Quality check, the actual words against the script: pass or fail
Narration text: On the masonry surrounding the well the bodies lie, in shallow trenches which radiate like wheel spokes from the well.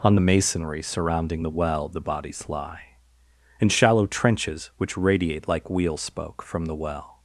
fail